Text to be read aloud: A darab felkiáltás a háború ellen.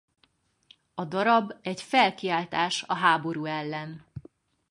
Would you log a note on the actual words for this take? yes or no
yes